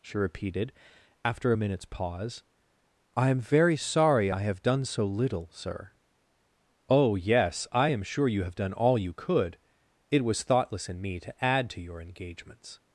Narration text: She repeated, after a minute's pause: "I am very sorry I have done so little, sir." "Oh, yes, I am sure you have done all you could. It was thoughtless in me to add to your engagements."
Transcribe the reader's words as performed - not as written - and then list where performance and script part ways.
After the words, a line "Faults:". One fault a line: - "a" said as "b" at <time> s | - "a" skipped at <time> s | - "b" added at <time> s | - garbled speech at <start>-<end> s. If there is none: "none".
She repeated, after a minute's pause: "I am very sorry I have done so little, sir." "Oh, yes, I am sure you have done all you could. It was thoughtless in me to add to your engagements."
Faults:
none